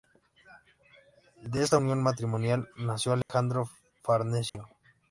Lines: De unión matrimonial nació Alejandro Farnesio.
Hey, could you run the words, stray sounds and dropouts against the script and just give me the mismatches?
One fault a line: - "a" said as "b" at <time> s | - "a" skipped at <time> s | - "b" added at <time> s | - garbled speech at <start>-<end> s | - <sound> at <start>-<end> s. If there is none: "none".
- "esta" added at 1.6 s
- dropout at 3.2-3.3 s
- dropout at 4.5-4.5 s